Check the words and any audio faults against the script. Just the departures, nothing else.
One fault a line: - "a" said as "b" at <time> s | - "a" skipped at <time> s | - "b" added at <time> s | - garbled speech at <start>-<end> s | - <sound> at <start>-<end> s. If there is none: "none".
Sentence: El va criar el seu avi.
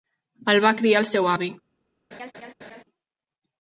- laugh at 2.1-2.8 s